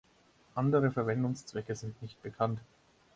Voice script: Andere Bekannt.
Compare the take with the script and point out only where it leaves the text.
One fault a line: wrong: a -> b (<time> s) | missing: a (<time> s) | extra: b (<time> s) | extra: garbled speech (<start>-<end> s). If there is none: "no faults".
extra: Verwendungszwecke sind nicht (0.9 s)